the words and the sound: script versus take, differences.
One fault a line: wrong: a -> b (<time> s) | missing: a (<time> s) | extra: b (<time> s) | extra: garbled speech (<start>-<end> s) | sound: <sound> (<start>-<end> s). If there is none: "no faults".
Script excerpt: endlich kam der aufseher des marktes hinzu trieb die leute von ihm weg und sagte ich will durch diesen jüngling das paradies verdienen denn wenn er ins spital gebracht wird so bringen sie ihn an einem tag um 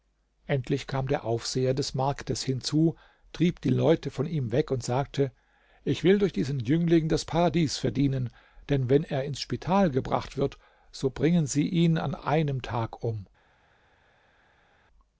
no faults